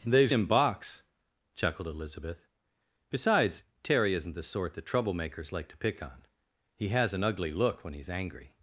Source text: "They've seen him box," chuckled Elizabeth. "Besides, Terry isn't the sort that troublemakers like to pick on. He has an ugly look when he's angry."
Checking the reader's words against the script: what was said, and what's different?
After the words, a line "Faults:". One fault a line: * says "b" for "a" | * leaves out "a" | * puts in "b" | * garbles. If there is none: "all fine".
"They've him box," chuckled Elizabeth. "Besides, Terry isn't the sort that troublemakers like to pick on. He has an ugly look when he's angry."
Faults:
* leaves out "seen"